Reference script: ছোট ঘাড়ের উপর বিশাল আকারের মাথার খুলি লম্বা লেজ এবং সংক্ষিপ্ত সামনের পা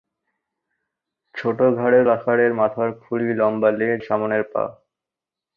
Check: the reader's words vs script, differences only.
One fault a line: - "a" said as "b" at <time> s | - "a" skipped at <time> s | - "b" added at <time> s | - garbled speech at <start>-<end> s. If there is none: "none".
- "উপর বিশাল" skipped at 2.1 s
- "এবং সংক্ষিপ্ত" skipped at 4.0 s